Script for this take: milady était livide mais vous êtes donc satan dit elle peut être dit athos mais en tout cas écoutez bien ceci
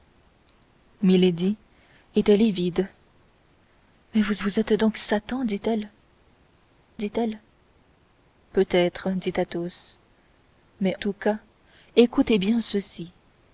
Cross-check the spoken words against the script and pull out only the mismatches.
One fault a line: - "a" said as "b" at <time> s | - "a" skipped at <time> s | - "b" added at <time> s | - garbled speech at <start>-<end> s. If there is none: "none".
- "vous" added at 4.4 s
- "dit elle" added at 7.0 s
- "en" skipped at 10.9 s